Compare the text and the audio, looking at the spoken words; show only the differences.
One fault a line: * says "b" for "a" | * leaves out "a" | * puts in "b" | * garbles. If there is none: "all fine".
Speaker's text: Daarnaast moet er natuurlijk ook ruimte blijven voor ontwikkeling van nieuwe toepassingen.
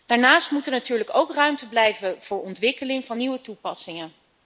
all fine